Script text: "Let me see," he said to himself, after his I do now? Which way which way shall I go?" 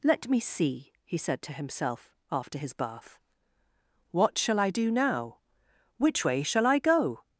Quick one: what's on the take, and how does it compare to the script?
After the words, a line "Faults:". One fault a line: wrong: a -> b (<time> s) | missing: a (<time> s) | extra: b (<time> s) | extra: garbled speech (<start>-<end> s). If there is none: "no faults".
"Let me see," he said to himself, after his bath. "What shall I do now? Which way shall I go?"
Faults:
extra: bath What shall (2.7 s)
missing: which way (6.4 s)